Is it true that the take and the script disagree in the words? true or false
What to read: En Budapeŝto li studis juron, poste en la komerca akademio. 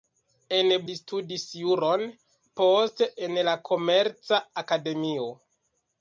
true